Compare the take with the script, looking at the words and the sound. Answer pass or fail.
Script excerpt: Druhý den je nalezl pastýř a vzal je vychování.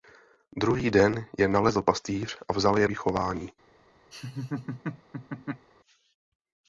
fail